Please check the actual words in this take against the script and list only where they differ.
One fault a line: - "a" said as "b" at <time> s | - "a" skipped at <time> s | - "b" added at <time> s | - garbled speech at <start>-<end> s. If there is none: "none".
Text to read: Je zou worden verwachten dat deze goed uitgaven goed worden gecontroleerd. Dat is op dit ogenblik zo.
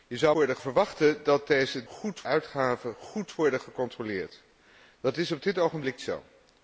none